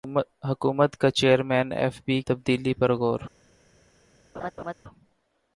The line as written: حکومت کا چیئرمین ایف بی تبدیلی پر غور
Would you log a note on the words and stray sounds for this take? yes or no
yes